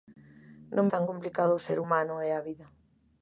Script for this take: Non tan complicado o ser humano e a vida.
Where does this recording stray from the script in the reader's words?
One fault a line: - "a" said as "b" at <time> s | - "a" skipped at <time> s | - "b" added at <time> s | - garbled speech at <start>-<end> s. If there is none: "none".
none